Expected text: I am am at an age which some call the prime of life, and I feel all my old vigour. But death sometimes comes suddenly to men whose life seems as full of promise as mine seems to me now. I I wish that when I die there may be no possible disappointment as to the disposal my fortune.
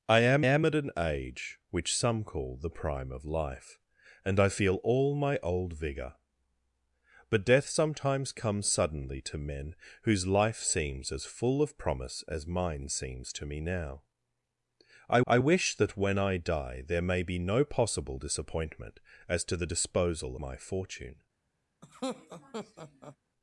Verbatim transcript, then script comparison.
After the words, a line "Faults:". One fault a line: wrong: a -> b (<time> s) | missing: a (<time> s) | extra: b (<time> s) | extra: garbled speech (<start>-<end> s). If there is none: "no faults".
I am am at an age which some call the prime of life, and I feel all my old vigour. But death sometimes comes suddenly to men whose life seems as full of promise as mine seems to me now. I I wish that when I die there may be no possible disappointment as to the disposal my fortune.
Faults:
no faults